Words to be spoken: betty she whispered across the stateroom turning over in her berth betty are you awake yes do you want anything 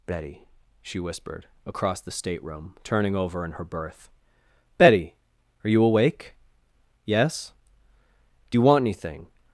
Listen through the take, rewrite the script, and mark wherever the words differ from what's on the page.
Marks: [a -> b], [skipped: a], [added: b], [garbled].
betty she whispered across the stateroom turning over in her berth betty are you awake yes do you want anything